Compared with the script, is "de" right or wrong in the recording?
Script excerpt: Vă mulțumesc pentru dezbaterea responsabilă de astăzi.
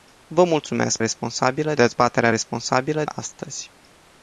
wrong